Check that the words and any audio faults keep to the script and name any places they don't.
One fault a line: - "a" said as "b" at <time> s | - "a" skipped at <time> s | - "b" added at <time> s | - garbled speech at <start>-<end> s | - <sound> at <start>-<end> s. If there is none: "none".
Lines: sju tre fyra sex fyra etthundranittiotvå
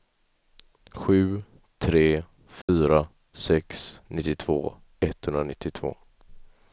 - dropout at 2.6-2.7 s
- "fyra" said as "nittiotvå" at 4.1 s